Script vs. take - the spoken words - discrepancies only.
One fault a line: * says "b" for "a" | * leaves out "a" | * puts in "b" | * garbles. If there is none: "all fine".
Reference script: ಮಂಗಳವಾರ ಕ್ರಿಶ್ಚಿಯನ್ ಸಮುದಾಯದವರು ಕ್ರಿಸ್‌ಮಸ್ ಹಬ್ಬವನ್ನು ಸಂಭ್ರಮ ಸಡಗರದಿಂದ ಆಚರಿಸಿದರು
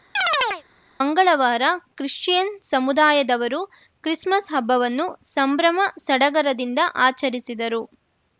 all fine